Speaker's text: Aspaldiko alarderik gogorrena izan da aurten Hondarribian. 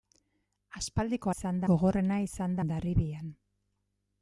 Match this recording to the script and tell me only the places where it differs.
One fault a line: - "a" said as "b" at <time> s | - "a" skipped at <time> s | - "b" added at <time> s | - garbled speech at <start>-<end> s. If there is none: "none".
- "alarderik" said as "izan" at 1.4 s
- "da aurten" skipped at 2.6 s